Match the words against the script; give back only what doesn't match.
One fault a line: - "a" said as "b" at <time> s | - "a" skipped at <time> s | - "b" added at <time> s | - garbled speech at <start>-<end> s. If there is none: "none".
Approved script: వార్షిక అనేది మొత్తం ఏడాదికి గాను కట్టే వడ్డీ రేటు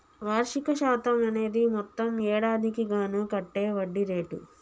- "శాతం" added at 0.8 s